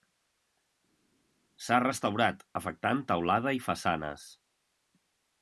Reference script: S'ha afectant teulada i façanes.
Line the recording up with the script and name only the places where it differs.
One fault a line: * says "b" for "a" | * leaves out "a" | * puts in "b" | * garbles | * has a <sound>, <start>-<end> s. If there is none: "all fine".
* puts in "restaurat"